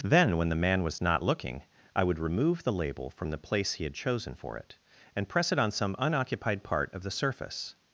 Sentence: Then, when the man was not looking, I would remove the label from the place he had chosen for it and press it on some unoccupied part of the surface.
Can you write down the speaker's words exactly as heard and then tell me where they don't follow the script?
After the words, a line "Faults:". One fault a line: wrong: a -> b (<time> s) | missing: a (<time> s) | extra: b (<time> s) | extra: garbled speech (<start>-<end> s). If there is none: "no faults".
Then, when the man was not looking, I would remove the label from the place he had chosen for it and press it on some unoccupied part of the surface.
Faults:
no faults